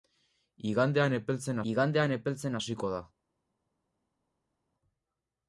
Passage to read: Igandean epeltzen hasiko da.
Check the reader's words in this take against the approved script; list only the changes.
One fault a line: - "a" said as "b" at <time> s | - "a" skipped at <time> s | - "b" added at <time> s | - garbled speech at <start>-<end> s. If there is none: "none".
- "igandean epeltzen" added at 1.7 s